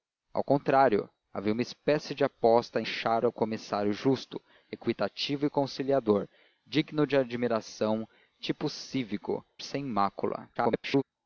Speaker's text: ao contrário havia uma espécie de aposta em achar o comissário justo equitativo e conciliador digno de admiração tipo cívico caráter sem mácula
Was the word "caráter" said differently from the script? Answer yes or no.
yes